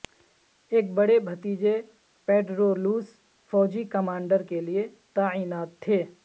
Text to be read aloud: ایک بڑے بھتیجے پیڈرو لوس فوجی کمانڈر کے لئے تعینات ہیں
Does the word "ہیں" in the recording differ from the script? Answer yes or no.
yes